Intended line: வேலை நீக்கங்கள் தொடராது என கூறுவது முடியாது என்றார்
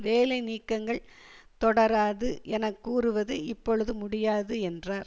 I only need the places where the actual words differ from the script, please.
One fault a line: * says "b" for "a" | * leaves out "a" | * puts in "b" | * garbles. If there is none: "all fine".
* puts in "இப்பொழுது"